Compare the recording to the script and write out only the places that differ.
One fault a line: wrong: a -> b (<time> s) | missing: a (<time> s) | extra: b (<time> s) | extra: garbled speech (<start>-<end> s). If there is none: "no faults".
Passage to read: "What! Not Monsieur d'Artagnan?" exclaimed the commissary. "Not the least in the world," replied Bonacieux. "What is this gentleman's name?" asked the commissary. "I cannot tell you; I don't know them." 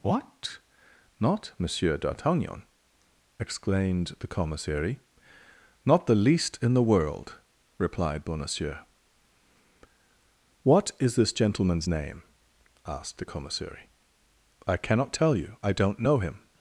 wrong: them -> him (16.2 s)